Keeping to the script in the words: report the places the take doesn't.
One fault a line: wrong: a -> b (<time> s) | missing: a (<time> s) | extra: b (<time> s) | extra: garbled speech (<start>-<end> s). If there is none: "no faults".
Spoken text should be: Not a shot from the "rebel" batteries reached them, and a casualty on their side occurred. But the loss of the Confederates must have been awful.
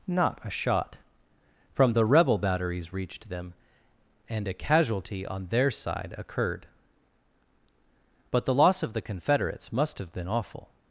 no faults